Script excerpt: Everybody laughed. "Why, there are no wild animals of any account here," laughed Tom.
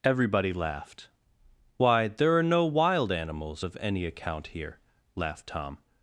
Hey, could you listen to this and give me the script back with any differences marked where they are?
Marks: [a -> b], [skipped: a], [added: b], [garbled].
Everybody laughed. "Why, there are no wild animals of any account here," laughed Tom.